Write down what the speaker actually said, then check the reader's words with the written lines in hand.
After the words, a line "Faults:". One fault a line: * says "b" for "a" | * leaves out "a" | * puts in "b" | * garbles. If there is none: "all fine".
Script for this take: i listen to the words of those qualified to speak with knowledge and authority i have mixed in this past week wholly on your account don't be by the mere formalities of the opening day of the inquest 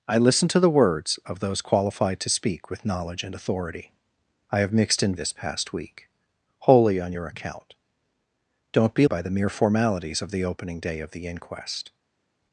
i listen to the words of those qualified to speak with knowledge and authority i have mixed in this past week wholly on your account don't be by the mere formalities of the opening day of the inquest
Faults:
all fine